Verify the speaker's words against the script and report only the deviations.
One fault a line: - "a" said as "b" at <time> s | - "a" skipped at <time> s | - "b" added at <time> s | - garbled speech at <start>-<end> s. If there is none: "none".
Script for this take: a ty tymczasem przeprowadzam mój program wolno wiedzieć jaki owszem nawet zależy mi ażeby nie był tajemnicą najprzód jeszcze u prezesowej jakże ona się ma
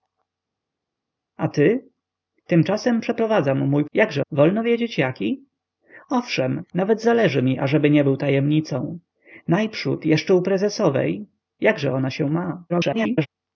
- "program" said as "jakże" at 3.9 s
- garbled speech at 12.7-13.3 s